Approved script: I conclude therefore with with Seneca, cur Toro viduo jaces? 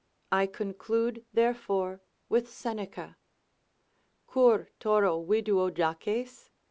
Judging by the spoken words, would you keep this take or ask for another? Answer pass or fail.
fail